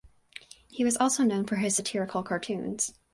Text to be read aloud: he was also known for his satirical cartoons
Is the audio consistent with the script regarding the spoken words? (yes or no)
yes